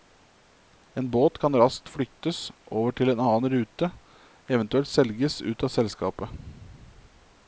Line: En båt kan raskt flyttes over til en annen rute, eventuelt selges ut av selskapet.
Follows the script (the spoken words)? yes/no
yes